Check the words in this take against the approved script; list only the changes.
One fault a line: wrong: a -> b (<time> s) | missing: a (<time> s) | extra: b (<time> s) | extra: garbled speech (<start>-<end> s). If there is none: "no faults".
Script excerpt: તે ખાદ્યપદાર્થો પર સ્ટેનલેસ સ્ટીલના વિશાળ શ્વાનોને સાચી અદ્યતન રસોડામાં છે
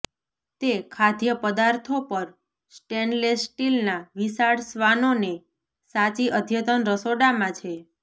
no faults